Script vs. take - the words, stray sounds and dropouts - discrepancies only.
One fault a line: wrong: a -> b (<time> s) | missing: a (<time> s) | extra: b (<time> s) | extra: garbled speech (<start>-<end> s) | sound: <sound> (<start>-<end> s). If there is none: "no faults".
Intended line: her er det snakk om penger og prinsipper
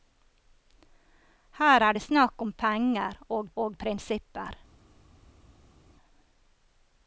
extra: og (3.5 s)